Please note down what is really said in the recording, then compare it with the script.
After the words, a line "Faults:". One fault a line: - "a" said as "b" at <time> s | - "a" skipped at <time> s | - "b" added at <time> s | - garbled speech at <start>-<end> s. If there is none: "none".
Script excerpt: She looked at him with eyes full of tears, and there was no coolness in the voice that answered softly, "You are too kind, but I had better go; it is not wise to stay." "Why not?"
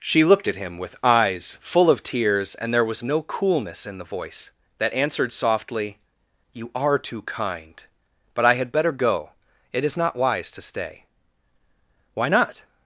She looked at him with eyes full of tears, and there was no coolness in the voice that answered softly, "You are too kind, but I had better go; it is not wise to stay." "Why not?"
Faults:
none